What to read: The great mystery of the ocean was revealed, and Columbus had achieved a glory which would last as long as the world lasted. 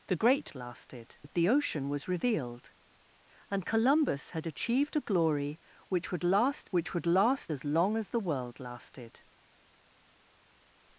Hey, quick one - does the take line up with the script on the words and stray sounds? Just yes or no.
no